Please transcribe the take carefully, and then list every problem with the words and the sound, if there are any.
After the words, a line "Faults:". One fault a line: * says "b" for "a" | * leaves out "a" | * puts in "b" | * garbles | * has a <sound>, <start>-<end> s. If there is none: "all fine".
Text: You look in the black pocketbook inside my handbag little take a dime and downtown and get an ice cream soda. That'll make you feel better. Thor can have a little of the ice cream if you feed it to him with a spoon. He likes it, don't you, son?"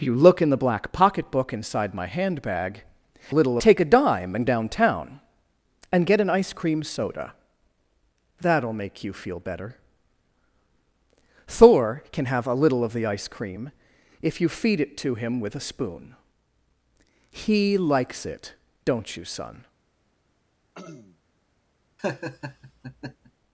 You look in the black pocketbook inside my handbag little take a dime and downtown and get an ice cream soda. That'll make you feel better. Thor can have a little of the ice cream if you feed it to him with a spoon. He likes it, don't you, son?"
Faults:
* has a throat clearing, 20.7-21.2 s
* has a laugh, 22.0-23.3 s